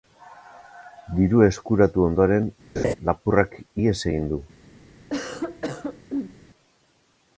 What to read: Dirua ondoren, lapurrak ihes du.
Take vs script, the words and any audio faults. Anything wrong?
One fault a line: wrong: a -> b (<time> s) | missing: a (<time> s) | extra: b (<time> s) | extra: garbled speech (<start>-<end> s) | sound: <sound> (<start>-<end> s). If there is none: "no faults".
extra: eskuratu (1.5 s)
sound: laugh (2.8-2.9 s)
extra: egin (4.1 s)
sound: cough (5.1-6.4 s)